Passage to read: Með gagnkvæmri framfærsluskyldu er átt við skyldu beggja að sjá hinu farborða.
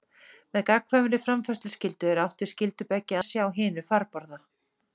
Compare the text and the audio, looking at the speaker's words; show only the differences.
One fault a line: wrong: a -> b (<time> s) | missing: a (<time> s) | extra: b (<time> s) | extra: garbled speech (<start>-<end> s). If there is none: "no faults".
no faults